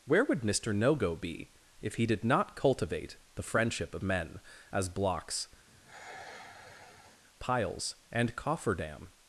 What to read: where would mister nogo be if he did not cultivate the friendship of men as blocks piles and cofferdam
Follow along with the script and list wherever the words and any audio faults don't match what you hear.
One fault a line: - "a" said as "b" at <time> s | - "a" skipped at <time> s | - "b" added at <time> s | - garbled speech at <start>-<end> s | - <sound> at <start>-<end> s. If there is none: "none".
- sigh at 5.7-7.2 s